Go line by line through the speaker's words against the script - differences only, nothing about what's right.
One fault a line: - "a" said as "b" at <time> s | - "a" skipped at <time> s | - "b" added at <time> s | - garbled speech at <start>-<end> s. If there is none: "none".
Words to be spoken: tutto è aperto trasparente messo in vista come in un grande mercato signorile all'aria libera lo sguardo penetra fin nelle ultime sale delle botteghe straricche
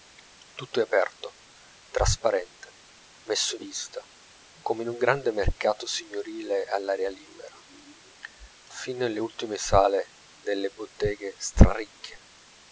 - "in" skipped at 3.5 s
- "lo sguardo penetra" skipped at 7.6 s